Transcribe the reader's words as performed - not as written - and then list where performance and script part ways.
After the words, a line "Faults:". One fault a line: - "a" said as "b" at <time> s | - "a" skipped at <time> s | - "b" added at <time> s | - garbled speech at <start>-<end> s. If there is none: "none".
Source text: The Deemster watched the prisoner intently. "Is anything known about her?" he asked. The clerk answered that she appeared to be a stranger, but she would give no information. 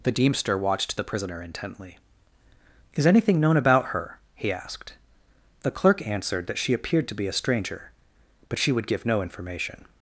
The Deemster watched the prisoner intently. "Is anything known about her?" he asked. The clerk answered that she appeared to be a stranger, but she would give no information.
Faults:
none